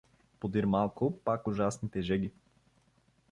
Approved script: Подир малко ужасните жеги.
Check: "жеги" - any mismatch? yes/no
no